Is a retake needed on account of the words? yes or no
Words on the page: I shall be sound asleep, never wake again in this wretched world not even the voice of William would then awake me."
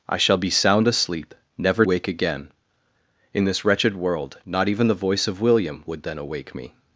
no